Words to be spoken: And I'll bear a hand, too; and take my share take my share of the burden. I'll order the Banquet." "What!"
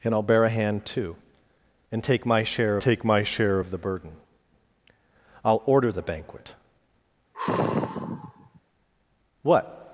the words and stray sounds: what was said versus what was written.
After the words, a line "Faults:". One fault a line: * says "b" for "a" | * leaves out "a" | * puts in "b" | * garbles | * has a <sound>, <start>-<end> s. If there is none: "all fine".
And I'll bear a hand, too; and take my share take my share of the burden. I'll order the Banquet." "What!"
Faults:
* has a sigh, 7.3-8.6 s